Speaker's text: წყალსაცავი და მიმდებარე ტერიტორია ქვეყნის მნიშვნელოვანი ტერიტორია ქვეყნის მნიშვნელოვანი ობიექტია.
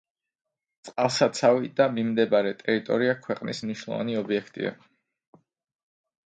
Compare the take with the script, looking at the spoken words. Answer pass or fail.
fail